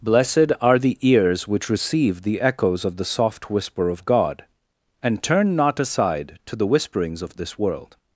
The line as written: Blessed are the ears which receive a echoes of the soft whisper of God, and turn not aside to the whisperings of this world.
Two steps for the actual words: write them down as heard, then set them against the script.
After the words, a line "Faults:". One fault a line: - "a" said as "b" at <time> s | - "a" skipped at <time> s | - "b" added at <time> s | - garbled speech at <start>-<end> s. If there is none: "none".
Blessed are the ears which receive the echoes of the soft whisper of God, and turn not aside to the whisperings of this world.
Faults:
- "a" said as "the" at 2.2 s